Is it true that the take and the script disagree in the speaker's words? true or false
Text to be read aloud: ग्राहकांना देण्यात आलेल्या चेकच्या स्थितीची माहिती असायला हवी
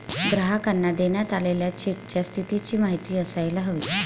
false